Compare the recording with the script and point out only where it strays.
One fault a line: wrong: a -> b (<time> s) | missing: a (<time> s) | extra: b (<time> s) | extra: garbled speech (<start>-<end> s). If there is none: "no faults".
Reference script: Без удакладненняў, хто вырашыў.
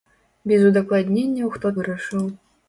no faults